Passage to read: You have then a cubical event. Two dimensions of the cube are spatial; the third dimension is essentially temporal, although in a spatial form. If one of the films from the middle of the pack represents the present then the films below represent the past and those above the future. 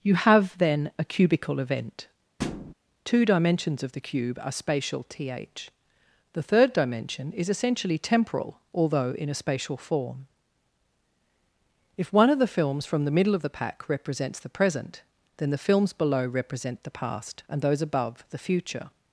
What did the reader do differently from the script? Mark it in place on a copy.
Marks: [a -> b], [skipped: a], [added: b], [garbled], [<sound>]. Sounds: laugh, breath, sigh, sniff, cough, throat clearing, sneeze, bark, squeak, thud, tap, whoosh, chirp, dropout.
You have then a cubical event. [thud] Two dimensions of the cube are spatial; [added: th] the third dimension is essentially temporal, although in a spatial form. If one of the films from the middle of the pack represents the present then the films below represent the past and those above the future.